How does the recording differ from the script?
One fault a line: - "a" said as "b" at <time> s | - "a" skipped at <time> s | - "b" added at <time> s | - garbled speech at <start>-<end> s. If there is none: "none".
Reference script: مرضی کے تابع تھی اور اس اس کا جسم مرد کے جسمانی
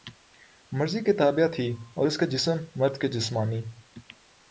- "اس" skipped at 2.2 s